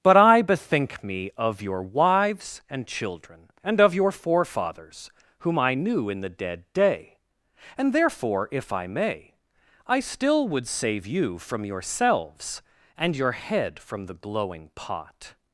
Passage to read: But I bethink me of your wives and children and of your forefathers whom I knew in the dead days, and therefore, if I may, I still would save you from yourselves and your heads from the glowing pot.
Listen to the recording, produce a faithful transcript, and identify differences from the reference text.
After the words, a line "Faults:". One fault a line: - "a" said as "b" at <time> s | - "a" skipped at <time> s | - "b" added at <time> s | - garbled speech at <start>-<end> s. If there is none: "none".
But I bethink me of your wives and children and of your forefathers whom I knew in the dead day, and therefore, if I may, I still would save you from yourselves and your head from the glowing pot.
Faults:
- "days" said as "day" at 6.7 s
- "heads" said as "head" at 13.3 s